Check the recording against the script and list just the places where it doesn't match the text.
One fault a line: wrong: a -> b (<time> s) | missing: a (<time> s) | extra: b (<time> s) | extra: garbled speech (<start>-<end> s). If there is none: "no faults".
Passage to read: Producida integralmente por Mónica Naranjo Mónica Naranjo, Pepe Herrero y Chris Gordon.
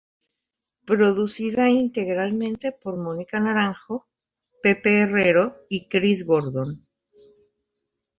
missing: Mónica Naranjo (4.1 s)